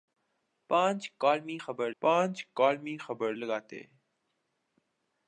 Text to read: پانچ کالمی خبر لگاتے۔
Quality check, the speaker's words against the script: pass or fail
fail